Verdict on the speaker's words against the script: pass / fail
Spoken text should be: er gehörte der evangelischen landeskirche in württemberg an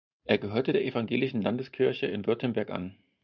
pass